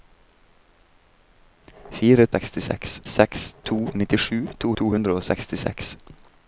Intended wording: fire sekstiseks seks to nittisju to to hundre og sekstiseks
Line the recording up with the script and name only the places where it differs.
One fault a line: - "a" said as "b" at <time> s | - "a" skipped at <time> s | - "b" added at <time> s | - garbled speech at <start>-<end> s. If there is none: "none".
none